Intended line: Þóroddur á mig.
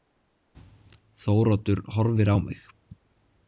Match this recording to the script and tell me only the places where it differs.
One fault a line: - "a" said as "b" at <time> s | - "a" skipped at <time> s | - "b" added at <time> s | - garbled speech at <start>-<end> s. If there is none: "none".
- "horfir" added at 2.0 s